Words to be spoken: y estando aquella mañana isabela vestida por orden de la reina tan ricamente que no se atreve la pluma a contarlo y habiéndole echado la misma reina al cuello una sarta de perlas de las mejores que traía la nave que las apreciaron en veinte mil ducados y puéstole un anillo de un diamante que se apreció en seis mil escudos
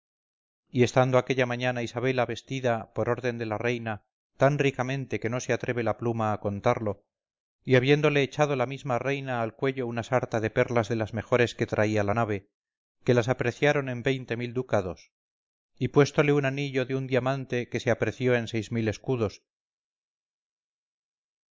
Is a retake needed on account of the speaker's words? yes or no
no